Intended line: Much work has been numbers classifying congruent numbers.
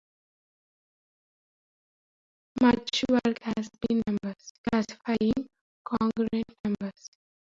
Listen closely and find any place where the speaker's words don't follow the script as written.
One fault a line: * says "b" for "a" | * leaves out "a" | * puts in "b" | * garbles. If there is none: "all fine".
all fine